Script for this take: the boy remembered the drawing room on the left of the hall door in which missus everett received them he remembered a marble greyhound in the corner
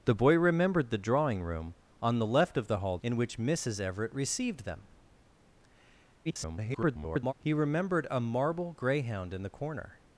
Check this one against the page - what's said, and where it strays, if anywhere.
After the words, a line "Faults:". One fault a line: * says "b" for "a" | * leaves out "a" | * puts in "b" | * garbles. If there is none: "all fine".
the boy remembered the drawing room on the left of the hall in which missus everett received them [garbled] he remembered a marble greyhound in the corner
Faults:
* leaves out "door"
* garbles